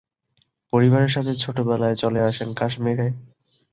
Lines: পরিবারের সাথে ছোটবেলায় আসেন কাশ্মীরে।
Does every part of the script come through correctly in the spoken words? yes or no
no